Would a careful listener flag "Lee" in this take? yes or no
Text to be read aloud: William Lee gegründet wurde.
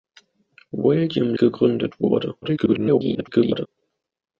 yes